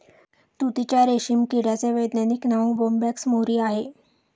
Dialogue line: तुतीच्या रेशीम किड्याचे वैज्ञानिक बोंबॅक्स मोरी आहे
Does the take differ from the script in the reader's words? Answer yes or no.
yes